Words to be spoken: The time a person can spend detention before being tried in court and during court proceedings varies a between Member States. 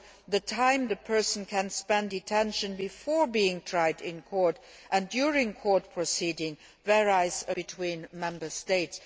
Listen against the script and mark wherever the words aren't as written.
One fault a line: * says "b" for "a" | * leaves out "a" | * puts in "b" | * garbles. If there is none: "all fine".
all fine